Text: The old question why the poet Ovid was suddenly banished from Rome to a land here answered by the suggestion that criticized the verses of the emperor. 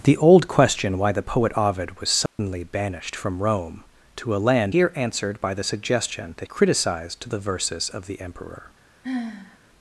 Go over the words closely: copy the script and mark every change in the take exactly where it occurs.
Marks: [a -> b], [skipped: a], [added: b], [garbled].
The old question why the poet Ovid was suddenly banished from Rome to a land here answered by the suggestion that criticized the verses of the emperor.